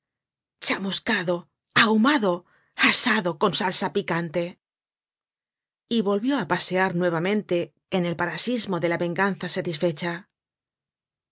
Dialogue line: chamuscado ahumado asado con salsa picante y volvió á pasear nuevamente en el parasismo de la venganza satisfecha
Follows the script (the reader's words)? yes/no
yes